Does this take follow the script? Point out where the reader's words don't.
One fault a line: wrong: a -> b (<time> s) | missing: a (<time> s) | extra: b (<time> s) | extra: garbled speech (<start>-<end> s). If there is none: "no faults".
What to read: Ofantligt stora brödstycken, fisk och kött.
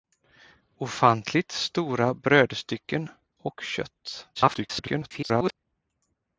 missing: fisk (3.1 s)
extra: garbled speech (4.3-5.5 s)